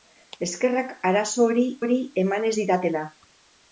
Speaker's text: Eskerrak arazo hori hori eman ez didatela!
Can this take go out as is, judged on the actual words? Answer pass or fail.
pass